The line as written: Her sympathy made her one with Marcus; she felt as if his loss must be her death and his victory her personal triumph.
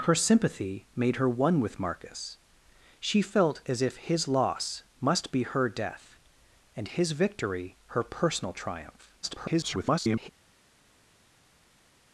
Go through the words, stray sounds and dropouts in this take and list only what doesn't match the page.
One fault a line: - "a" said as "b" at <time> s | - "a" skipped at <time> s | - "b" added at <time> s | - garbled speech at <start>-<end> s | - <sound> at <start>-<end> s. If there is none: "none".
- garbled speech at 9.2-10.3 s